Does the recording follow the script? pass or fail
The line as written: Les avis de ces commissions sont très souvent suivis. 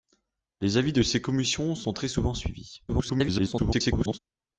fail